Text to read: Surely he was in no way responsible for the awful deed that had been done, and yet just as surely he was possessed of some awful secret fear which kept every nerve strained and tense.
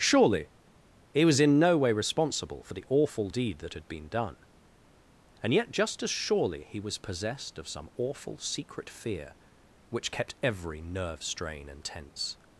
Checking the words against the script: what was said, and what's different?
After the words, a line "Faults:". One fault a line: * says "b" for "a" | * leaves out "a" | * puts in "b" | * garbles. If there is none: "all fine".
Surely he was in no way responsible for the awful deed that had been done, and yet just as surely he was possessed of some awful secret fear which kept every nerve strain and tense.
Faults:
* says "strain" for "strained"